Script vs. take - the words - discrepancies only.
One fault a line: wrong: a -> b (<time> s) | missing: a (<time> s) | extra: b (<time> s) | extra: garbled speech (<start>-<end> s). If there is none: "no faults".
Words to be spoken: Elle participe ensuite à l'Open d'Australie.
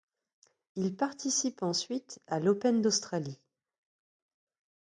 wrong: Elle -> Il (0.7 s)